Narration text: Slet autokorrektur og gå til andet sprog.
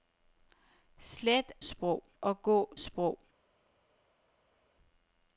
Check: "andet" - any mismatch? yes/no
yes